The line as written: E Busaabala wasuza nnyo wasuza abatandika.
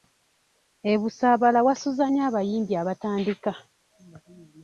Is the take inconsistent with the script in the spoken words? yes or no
yes